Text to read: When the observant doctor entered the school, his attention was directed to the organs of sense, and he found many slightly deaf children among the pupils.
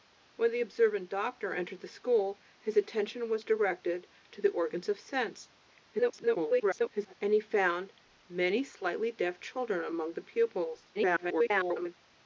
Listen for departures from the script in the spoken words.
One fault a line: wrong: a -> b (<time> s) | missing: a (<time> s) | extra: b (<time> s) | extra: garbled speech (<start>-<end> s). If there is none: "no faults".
extra: garbled speech (5.9-7.1 s)
extra: garbled speech (10.9-11.9 s)